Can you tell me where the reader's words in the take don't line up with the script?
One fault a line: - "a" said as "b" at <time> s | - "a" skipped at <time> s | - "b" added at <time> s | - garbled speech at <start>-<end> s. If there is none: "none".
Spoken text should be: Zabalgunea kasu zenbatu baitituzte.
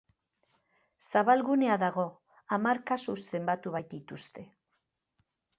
- "dago hamar" added at 1.8 s